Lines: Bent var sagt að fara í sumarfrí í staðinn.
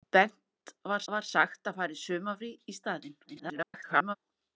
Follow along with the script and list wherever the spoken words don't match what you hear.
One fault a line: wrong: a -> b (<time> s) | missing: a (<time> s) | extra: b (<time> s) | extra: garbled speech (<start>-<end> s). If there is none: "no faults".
extra: var (1.1 s)
extra: garbled speech (3.3-4.2 s)